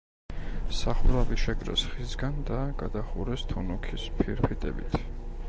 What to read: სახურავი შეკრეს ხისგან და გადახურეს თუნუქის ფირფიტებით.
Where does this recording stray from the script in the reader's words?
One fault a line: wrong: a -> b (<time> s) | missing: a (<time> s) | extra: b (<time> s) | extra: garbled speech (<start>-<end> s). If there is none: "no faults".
no faults